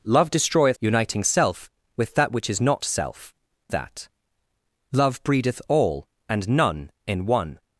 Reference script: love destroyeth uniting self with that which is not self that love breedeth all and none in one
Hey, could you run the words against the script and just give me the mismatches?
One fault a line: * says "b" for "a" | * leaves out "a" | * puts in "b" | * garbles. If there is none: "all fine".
all fine